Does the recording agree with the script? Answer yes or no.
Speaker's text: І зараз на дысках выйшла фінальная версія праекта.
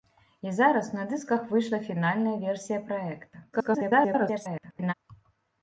no